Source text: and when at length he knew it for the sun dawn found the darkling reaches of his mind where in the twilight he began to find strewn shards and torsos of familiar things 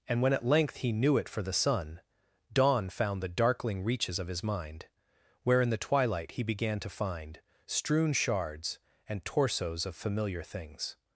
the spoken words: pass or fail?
pass